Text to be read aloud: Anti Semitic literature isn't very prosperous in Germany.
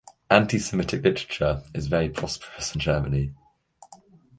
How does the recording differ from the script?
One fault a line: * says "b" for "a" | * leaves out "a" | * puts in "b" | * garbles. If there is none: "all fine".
* says "is" for "isn't"